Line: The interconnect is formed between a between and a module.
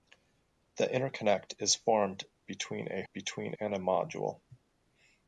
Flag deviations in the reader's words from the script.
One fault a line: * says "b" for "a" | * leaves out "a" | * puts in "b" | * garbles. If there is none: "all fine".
all fine